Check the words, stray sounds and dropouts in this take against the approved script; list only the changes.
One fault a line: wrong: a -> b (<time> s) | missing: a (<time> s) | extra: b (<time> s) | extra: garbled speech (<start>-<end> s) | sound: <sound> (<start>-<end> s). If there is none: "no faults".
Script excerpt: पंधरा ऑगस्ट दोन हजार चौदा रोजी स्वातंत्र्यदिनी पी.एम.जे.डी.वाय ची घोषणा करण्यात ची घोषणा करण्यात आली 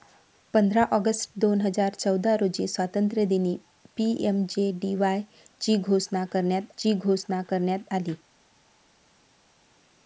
no faults